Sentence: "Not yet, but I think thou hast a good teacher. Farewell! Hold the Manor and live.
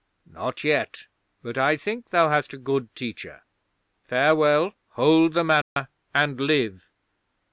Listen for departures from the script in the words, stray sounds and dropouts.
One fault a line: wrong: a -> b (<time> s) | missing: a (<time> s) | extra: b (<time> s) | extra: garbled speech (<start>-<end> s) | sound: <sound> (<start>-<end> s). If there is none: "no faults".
sound: dropout (5.6-5.8 s)